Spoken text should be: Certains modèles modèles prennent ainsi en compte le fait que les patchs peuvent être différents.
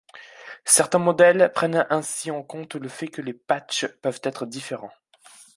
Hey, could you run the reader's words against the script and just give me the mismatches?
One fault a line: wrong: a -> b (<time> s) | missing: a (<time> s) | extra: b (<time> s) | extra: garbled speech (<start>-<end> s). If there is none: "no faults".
missing: modèles (1.5 s)